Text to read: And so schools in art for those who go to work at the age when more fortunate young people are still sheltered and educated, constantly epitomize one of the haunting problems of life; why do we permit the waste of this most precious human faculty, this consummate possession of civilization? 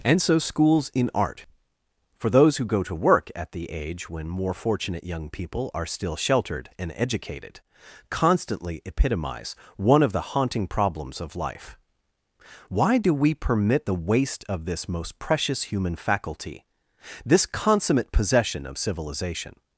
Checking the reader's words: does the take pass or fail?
pass